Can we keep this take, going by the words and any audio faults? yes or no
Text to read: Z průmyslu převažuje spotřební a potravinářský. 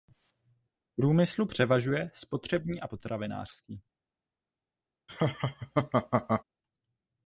no